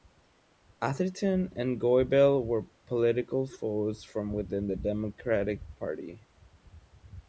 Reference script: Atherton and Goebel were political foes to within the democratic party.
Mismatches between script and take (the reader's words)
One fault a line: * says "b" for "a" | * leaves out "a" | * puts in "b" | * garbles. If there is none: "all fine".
* says "from" for "to"